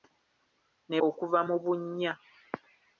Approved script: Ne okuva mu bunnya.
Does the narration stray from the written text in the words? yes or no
no